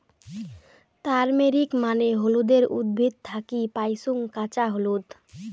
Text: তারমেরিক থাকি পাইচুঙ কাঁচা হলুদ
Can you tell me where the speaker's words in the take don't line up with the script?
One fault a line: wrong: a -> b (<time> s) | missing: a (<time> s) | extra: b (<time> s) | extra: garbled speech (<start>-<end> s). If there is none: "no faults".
extra: মানে হলুদের উদ্ভিদ (1.8 s)